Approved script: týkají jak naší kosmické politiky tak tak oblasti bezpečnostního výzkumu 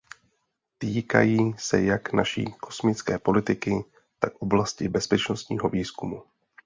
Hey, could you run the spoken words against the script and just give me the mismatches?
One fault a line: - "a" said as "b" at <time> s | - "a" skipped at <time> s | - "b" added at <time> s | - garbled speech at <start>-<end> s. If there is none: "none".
- "se" added at 1.6 s
- "tak" skipped at 4.3 s